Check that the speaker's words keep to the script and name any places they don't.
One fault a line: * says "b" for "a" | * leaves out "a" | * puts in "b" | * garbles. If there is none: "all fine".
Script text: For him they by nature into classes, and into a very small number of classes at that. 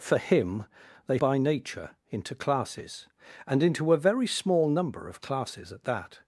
all fine